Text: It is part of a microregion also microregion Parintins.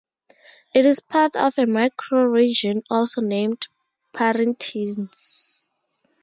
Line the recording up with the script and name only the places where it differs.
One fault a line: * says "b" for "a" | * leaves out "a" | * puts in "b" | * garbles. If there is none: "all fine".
* says "named" for "microregion"